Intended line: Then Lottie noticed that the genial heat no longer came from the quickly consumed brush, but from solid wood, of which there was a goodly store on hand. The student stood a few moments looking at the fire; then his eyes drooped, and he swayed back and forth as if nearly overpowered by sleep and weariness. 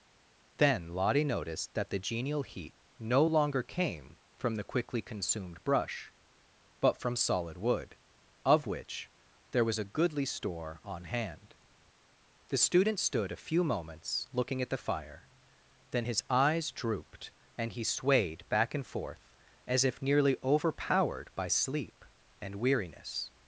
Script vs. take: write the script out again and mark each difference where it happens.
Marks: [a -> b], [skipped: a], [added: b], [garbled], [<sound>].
Then Lottie noticed that the genial heat no longer came from the quickly consumed brush, but from solid wood, of which there was a goodly store on hand. The student stood a few moments looking at the fire; then his eyes drooped, and he swayed back and forth as if nearly overpowered by sleep and weariness.